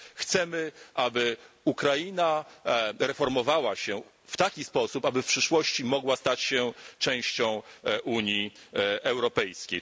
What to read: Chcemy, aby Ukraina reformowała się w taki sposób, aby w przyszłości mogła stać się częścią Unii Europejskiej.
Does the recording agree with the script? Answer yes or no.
yes